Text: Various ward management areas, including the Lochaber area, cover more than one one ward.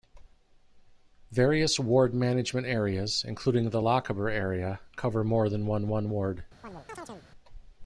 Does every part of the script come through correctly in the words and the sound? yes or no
no